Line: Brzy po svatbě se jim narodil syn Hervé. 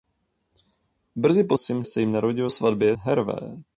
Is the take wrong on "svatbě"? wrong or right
wrong